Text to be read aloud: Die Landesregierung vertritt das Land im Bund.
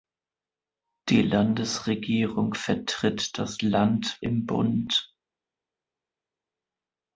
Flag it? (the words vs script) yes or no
no